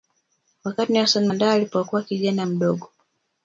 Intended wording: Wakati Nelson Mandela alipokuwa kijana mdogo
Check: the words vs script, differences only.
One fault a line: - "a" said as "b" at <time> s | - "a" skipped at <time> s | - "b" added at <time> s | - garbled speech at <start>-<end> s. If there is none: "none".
none